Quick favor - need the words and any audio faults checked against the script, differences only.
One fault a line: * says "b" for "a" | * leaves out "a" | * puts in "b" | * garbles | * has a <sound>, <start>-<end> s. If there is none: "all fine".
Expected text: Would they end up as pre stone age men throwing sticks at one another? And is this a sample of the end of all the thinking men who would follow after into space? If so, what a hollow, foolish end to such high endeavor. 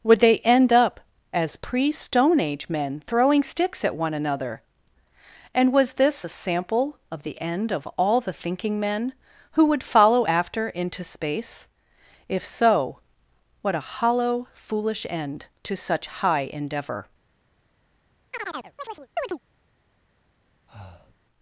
* says "was" for "is"
* has a chirp, 18.3-19.4 s
* has a breath, 20.7-21.2 s